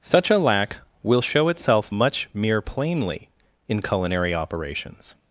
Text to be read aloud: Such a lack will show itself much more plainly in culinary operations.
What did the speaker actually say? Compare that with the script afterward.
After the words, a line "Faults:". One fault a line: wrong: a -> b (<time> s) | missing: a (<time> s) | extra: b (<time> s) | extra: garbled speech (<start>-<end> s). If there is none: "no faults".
Such a lack will show itself much mere plainly in culinary operations.
Faults:
wrong: more -> mere (2.3 s)